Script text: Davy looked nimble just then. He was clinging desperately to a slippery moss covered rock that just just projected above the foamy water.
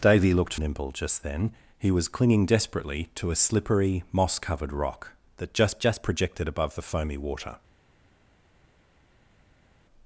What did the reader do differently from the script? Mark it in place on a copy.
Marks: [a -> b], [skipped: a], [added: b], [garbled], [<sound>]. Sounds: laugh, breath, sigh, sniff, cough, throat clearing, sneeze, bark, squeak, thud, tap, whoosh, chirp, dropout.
Davy looked nimble just then. He was clinging desperately to a slippery moss covered rock that just just projected above the foamy water.